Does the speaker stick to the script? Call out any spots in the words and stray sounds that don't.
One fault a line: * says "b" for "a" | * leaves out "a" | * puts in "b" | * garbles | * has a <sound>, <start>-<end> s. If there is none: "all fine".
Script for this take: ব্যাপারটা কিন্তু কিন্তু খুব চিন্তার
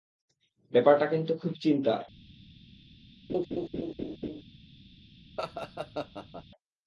* leaves out "কিন্তু"
* has a laugh, 3.3-4.4 s
* has a laugh, 5.4-6.4 s